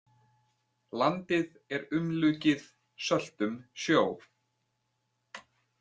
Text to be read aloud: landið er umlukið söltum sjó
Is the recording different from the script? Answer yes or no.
no